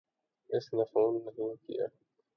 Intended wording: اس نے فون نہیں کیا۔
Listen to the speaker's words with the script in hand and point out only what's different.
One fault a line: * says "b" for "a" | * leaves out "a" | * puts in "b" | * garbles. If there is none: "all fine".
all fine